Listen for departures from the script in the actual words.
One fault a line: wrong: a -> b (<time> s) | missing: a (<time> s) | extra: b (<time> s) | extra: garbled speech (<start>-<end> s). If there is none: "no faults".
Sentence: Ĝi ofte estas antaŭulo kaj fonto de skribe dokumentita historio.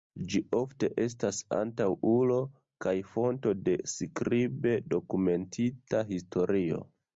no faults